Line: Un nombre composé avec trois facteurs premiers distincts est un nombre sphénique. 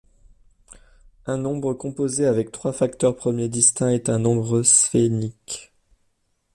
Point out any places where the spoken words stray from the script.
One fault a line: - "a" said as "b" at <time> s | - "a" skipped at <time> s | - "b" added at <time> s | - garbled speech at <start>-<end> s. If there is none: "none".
none